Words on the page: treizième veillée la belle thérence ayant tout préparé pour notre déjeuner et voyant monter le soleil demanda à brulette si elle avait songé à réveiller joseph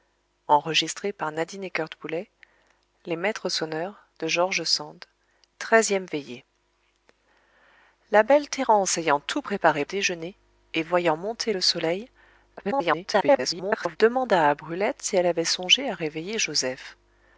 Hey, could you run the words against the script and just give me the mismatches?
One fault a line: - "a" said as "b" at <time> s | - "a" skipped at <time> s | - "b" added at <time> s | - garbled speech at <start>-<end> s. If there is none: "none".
- "pour notre" skipped at 9.8 s
- garbled speech at 12.6-14.0 s